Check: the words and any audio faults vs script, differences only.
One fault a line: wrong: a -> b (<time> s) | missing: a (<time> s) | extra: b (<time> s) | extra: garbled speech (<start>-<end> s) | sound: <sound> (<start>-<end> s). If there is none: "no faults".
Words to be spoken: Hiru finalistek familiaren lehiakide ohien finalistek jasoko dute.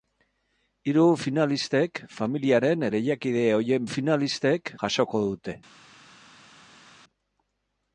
no faults